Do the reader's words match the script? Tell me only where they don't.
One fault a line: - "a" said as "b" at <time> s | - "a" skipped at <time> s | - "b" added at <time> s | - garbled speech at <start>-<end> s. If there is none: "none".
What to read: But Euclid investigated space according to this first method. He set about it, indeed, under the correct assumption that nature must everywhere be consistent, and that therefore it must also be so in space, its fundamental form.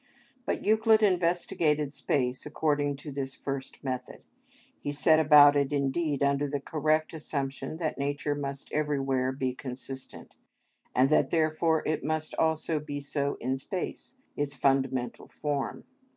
none